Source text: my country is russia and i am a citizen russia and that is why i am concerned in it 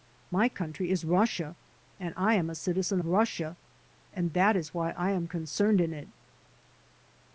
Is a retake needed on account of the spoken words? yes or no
no